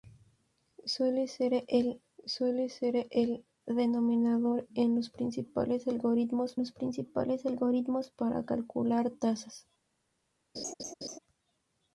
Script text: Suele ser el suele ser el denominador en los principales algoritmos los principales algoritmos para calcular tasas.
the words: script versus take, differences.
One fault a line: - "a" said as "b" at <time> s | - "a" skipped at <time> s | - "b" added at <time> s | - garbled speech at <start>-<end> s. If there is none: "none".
none